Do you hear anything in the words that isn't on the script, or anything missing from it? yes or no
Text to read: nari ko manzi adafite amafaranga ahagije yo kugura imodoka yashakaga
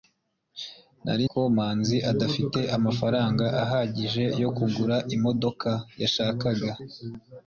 no